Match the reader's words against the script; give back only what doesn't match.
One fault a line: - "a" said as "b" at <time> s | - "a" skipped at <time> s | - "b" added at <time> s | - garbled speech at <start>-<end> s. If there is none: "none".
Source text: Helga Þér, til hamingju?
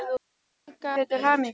none